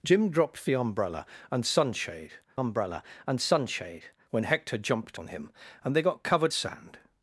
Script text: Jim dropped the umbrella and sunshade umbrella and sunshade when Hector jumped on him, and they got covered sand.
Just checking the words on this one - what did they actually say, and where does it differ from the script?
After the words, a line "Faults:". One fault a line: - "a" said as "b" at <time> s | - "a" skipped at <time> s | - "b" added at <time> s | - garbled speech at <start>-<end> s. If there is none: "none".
Jim dropped the umbrella and sunshade umbrella and sunshade when Hector jumped on him, and they got covered sand.
Faults:
none